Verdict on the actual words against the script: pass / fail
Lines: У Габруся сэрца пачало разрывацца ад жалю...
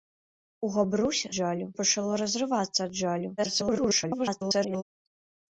fail